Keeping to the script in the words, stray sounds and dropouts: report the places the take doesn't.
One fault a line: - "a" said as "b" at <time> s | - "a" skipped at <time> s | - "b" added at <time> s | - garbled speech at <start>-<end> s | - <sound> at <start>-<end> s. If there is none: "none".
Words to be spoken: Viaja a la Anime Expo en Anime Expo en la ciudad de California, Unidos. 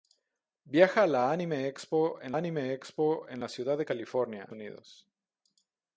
none